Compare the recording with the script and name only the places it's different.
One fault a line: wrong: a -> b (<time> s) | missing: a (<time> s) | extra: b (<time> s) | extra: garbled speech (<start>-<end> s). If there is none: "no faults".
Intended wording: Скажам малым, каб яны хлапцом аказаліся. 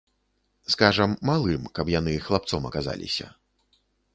no faults